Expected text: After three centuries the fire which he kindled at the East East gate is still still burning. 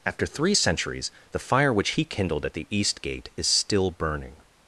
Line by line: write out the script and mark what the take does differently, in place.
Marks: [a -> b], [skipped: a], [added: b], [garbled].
After three centuries the fire which he kindled at the East [skipped: East] gate is still [skipped: still] burning.